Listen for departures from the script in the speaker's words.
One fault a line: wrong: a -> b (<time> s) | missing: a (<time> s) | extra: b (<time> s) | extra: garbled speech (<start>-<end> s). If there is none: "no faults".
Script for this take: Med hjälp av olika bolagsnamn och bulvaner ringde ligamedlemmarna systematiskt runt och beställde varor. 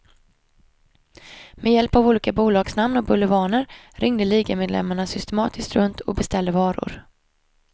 no faults